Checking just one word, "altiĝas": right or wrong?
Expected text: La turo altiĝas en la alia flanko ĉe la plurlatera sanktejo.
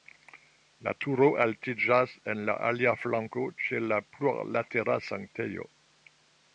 right